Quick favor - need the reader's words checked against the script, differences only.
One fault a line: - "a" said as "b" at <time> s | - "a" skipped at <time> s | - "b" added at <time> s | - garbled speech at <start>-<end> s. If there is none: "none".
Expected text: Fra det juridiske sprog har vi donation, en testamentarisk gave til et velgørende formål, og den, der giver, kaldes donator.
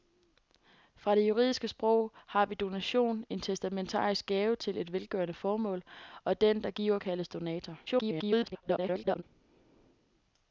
- garbled speech at 7.9-9.2 s